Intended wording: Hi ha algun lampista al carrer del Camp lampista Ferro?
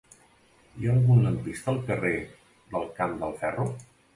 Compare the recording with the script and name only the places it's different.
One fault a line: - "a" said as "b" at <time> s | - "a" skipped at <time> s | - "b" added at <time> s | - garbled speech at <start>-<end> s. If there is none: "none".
- "lampista" said as "del" at 3.2 s